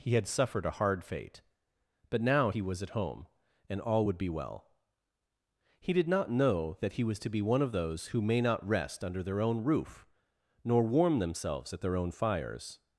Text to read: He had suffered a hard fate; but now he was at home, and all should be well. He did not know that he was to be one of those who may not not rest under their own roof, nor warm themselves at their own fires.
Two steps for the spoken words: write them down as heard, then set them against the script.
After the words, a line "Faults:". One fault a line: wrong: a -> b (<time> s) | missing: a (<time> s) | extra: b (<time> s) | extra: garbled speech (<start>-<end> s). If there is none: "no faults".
He had suffered a hard fate; but now he was at home, and all would be well. He did not know that he was to be one of those who may not rest under their own roof, nor warm themselves at their own fires.
Faults:
wrong: should -> would (4.0 s)
missing: not (8.7 s)